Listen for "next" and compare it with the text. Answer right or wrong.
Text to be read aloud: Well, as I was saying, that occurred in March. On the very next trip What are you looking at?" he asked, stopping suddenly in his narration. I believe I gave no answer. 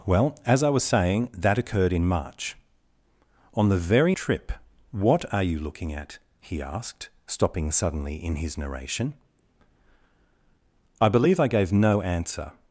wrong